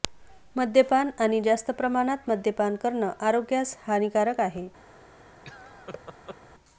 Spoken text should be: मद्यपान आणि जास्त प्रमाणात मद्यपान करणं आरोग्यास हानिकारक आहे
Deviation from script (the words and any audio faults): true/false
true